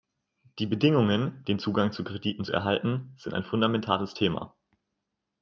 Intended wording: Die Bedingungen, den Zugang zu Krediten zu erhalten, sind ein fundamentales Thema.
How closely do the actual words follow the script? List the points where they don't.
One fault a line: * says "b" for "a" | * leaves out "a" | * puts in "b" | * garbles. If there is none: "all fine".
all fine